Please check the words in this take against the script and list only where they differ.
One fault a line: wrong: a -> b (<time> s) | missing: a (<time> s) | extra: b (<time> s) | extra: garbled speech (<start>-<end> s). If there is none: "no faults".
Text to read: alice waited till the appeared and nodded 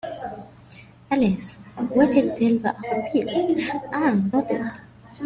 no faults